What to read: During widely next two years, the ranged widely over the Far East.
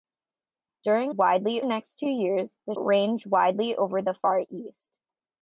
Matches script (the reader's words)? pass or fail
pass